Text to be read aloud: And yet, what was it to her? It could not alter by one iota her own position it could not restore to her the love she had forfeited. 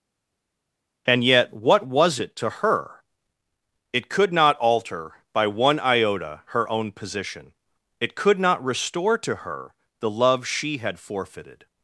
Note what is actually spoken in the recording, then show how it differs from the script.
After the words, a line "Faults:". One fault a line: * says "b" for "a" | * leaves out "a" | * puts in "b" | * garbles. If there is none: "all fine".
And yet, what was it to her? It could not alter by one iota her own position it could not restore to her the love she had forfeited.
Faults:
all fine